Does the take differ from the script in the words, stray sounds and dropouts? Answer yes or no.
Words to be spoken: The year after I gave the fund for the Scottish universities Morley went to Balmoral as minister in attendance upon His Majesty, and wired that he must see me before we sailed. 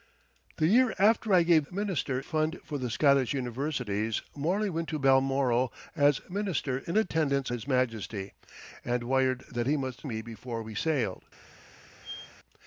yes